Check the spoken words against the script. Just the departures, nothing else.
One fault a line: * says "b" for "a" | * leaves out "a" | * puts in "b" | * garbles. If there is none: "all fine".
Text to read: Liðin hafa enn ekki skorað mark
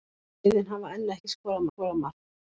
* puts in "skorað"